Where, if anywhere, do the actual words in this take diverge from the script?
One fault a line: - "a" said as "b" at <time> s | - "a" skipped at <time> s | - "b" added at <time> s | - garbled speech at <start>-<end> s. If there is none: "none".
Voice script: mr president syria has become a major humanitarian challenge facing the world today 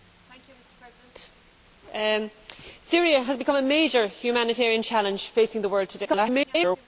- garbled speech at 6.0-6.9 s